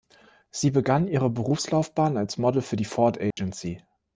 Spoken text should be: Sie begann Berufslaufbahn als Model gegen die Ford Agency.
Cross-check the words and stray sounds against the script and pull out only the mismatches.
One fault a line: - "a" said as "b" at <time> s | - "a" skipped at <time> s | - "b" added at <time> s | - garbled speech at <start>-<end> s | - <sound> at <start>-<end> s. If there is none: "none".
- "ihre" added at 1.1 s
- "gegen" said as "für" at 2.6 s
- dropout at 3.3-3.4 s